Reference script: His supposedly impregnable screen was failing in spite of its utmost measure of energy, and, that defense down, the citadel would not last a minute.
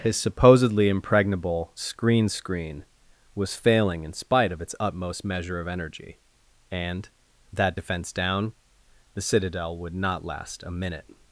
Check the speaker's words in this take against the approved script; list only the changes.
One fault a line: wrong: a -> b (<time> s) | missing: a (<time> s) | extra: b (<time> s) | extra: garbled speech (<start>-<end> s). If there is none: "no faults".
extra: screen (2.3 s)